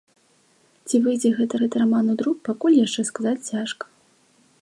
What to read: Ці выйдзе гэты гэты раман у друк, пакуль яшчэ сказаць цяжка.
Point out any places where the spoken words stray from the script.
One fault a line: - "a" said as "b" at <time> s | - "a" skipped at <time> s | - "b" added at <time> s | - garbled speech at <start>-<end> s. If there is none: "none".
none